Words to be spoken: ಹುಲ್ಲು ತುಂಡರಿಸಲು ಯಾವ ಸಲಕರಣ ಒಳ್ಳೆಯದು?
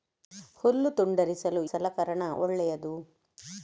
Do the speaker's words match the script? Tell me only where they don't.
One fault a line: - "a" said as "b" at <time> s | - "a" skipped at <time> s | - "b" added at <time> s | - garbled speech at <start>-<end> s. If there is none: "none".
- "ಯಾವ" skipped at 1.6 s